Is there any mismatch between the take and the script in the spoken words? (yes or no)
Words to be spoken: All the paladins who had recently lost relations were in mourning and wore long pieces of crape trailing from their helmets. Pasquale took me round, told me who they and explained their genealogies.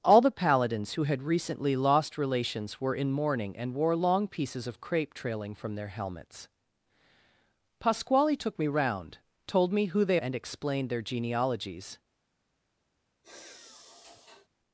no